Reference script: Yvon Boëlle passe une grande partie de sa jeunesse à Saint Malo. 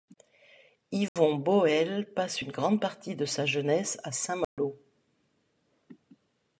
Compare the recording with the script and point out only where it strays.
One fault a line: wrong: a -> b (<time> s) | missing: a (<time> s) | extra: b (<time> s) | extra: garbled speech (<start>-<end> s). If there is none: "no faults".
no faults